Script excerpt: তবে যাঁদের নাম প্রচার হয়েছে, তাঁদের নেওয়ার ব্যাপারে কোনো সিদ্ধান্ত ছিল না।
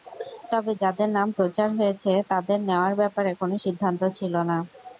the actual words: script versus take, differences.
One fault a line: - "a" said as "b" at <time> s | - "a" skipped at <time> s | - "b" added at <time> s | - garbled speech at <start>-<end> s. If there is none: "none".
none